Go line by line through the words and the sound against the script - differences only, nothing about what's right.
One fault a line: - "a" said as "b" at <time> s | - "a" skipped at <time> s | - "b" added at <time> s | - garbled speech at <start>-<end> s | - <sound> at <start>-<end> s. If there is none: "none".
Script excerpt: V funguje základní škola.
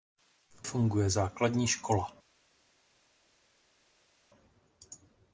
none